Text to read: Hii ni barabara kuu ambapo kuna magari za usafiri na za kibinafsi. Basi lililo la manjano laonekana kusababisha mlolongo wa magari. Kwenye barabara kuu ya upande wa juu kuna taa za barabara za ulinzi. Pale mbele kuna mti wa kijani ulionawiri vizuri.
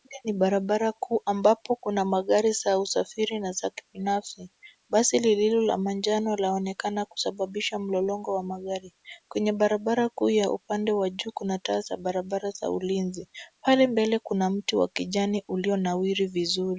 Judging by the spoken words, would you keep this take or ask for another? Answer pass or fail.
pass